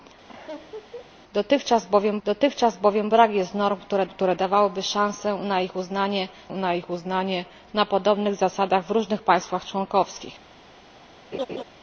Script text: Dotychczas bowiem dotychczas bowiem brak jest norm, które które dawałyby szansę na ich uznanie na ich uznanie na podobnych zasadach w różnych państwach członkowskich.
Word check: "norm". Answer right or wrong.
right